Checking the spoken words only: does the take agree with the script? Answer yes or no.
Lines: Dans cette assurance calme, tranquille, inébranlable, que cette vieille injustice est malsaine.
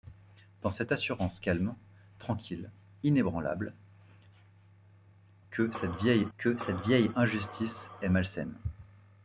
no